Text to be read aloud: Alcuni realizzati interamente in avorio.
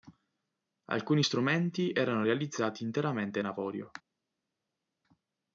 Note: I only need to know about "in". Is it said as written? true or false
true